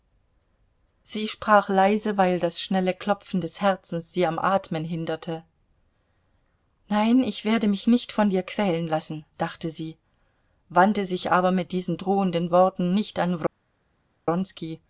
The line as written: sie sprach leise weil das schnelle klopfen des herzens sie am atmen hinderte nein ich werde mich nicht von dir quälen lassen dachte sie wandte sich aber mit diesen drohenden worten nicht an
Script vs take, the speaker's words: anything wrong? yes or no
no